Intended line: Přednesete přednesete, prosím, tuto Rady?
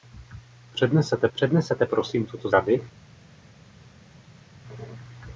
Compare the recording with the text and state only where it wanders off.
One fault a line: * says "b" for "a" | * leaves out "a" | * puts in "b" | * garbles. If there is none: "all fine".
all fine